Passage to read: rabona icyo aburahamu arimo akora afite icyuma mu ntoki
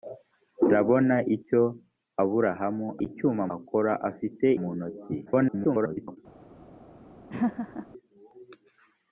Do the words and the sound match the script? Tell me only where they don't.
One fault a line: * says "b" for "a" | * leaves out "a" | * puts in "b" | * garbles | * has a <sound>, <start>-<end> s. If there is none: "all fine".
* says "icyuma" for "arimo"
* leaves out "icyuma"
* garbles
* has a laugh, 7.3-7.9 s